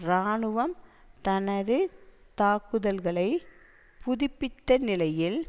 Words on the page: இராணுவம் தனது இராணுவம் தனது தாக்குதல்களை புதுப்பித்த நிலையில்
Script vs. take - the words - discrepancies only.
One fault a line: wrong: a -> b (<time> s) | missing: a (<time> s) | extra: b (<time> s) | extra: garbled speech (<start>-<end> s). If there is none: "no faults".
missing: இராணுவம் தனது (1.8 s)